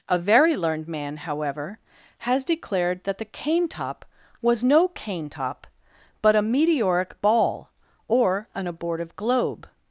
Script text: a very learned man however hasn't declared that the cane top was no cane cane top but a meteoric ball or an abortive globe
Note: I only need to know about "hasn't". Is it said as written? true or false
false